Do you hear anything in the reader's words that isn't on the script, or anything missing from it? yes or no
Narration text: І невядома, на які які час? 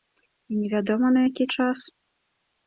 yes